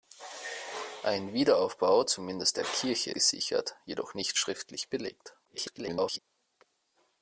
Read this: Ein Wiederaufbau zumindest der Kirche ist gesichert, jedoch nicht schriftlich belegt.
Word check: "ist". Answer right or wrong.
wrong